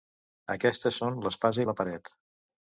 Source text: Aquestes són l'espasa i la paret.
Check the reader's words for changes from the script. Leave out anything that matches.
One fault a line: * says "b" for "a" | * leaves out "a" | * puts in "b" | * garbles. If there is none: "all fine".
all fine